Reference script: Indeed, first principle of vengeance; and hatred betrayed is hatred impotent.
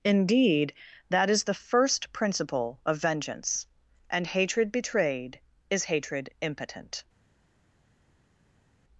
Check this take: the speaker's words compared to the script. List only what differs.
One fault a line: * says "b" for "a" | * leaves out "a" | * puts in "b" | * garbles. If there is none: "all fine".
* puts in "that is the"